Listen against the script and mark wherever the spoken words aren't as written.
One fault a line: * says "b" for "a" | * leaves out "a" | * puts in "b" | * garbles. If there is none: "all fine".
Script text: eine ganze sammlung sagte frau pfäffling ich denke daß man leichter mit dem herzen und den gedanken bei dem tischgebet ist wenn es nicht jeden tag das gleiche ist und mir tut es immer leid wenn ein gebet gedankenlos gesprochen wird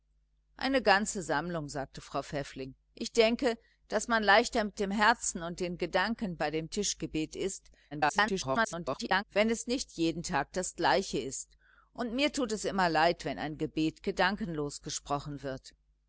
* garbles